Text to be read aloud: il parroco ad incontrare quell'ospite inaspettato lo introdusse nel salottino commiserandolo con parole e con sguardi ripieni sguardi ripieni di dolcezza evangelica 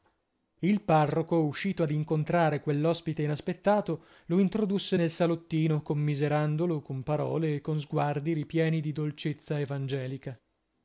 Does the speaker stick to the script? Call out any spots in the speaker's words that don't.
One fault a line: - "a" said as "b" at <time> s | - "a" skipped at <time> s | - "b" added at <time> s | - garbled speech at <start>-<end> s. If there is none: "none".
- "uscito" added at 1.4 s
- "sguardi ripieni" skipped at 8.8 s